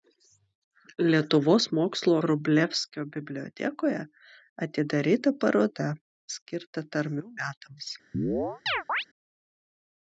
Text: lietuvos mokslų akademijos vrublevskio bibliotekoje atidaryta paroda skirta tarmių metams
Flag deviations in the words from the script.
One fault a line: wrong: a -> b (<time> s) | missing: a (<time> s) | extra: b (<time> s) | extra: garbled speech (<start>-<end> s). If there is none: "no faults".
missing: akademijos (2.1 s)